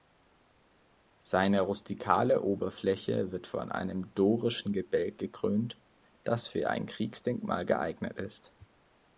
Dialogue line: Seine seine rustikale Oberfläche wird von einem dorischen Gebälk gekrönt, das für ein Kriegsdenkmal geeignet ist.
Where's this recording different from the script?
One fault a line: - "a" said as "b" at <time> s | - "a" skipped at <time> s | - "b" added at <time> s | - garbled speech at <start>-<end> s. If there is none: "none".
- "seine" skipped at 1.6 s